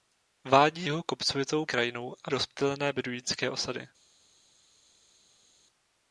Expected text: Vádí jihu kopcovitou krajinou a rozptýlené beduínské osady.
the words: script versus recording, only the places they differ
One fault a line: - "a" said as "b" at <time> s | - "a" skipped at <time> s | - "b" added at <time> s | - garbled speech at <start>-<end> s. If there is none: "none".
none